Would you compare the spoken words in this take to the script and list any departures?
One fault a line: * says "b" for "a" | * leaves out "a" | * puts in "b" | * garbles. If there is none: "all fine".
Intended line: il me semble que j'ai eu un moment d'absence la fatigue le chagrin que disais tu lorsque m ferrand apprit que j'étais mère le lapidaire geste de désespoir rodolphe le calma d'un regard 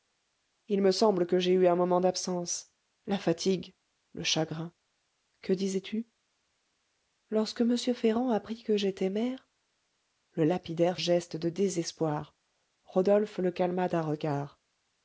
all fine